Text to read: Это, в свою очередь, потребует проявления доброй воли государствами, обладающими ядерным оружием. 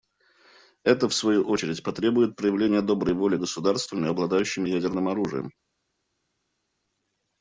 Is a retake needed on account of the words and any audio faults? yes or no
no